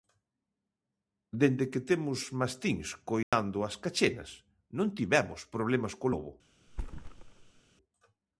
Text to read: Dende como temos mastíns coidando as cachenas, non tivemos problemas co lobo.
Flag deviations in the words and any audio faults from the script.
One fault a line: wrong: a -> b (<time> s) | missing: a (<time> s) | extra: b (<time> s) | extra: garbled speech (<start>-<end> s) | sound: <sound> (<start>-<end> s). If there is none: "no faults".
wrong: como -> que (1.7 s)
sound: dropout (3.2-3.3 s)
sound: thud (6.7-7.6 s)